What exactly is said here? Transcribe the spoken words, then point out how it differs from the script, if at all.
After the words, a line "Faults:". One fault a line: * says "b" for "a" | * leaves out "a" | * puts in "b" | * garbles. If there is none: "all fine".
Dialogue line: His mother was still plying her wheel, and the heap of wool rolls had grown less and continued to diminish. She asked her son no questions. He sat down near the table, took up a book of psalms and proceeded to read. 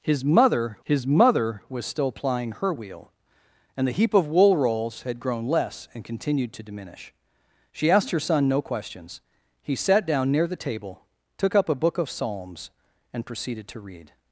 His mother his mother was still plying her wheel, and the heap of wool rolls had grown less and continued to diminish. She asked her son no questions. He sat down near the table, took up a book of psalms and proceeded to read.
Faults:
* puts in "his mother"